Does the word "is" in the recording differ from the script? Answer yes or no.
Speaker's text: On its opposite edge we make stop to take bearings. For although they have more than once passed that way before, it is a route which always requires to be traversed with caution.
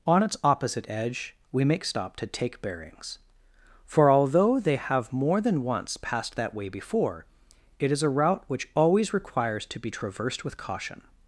no